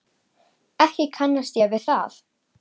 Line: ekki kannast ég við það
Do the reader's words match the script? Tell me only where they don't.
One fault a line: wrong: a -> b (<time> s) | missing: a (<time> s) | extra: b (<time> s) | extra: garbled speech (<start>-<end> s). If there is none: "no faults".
no faults